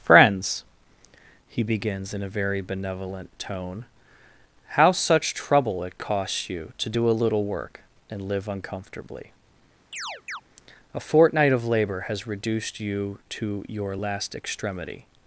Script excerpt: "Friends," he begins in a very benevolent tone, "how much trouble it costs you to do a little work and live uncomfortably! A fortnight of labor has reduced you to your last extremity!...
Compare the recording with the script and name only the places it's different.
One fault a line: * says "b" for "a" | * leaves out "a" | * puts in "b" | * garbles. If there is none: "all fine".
* says "such" for "much"